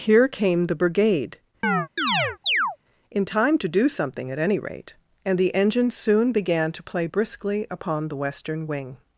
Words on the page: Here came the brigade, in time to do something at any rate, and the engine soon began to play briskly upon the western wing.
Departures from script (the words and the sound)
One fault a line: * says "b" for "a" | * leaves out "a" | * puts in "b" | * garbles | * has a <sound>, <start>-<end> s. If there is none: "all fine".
* has a chirp, 1.6-2.8 s